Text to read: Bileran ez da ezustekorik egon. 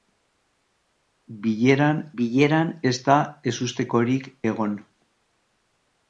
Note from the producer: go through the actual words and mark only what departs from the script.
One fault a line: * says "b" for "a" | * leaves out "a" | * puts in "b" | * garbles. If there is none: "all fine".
* puts in "bileran"